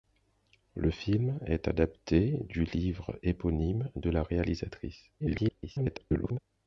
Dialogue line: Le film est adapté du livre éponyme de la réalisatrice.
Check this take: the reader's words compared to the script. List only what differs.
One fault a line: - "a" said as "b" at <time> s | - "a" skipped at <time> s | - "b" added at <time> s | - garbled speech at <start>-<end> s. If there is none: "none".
- garbled speech at 5.2-6.4 s